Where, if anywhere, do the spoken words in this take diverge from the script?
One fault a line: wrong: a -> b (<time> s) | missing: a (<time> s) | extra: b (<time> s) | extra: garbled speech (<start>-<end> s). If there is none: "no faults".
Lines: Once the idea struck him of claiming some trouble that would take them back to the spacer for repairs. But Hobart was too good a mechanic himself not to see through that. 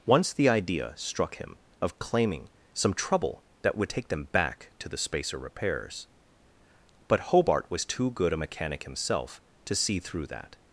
missing: for (5.4 s)
missing: not (9.4 s)